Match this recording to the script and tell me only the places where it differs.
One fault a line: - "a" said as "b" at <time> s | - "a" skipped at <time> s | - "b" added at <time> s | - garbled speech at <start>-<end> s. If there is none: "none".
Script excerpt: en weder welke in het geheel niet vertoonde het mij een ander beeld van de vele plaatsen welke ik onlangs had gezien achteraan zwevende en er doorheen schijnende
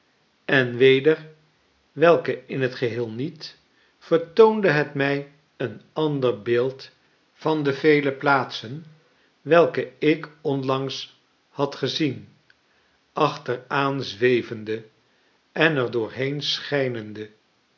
none